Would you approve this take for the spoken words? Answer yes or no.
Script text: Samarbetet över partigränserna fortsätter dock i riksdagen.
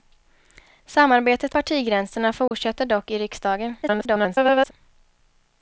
no